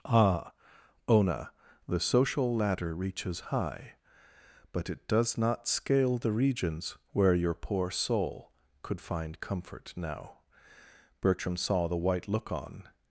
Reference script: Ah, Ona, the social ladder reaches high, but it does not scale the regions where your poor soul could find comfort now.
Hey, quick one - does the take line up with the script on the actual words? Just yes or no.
no